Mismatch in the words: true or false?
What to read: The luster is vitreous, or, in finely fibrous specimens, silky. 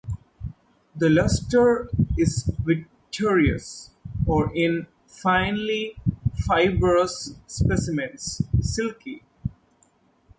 false